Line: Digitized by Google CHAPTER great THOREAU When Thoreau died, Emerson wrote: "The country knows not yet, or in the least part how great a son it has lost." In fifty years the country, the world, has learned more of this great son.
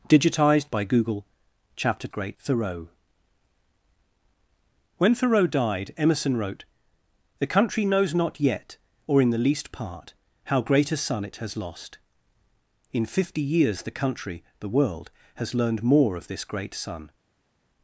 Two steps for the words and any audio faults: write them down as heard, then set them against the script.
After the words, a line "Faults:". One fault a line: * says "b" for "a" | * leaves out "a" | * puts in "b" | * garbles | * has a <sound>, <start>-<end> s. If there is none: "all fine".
Digitized by Google CHAPTER great THOREAU When Thoreau died, Emerson wrote: "The country knows not yet, or in the least part how great a son it has lost." In fifty years the country, the world, has learned more of this great son.
Faults:
all fine